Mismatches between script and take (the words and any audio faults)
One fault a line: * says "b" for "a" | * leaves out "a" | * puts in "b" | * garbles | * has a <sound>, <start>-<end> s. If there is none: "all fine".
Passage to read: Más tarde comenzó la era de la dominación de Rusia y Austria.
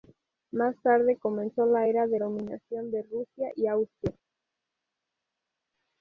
* leaves out "la"